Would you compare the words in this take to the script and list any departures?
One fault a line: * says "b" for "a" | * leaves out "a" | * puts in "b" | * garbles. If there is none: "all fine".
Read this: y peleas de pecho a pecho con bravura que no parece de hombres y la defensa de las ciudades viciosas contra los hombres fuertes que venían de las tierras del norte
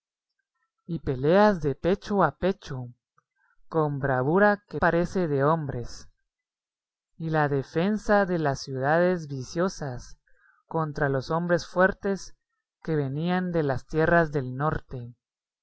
* leaves out "no"